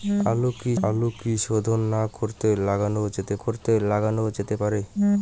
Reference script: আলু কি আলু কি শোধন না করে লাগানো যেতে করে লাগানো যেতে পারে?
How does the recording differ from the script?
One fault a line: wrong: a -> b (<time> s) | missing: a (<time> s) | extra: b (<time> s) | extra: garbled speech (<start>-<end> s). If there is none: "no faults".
no faults